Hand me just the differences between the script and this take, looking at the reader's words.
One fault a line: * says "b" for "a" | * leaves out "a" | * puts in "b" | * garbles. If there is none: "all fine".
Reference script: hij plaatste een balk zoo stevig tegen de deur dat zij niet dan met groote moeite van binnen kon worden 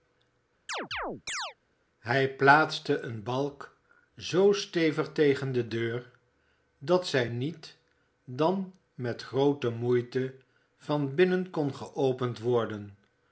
* puts in "geopend"